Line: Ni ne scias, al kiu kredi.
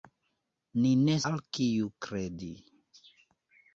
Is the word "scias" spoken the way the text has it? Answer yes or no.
no